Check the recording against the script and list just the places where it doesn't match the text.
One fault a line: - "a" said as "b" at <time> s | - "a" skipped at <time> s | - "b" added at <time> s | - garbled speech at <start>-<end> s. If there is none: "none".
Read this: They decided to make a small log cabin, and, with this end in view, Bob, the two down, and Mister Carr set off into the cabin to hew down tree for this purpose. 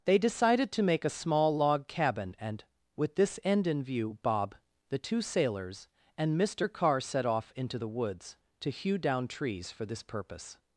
- "down" said as "sailors" at 5.2 s
- "cabin" said as "woods" at 7.9 s
- "tree" said as "trees" at 9.3 s